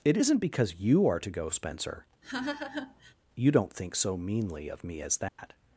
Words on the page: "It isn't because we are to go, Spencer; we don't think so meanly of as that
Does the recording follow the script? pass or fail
fail